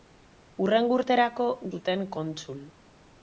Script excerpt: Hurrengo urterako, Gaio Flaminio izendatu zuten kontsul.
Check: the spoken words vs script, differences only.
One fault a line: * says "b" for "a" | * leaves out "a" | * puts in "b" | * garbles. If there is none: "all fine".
* leaves out "Gaio Flaminio izendatu"